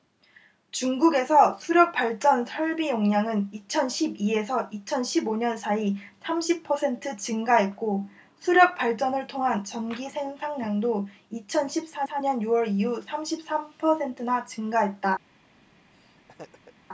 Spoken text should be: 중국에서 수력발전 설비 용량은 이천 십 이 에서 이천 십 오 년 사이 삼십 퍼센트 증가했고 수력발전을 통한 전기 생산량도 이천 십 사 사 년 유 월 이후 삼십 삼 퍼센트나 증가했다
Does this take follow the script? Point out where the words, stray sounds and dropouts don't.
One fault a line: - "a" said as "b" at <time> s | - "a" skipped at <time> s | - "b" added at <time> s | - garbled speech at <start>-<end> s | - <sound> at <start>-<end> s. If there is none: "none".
- laugh at 15.9-16.7 s